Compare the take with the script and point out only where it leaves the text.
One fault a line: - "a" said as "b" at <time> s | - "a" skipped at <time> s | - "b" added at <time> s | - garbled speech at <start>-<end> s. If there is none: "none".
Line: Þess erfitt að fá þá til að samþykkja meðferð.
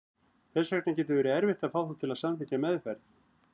- "vegna getur verið" added at 0.8 s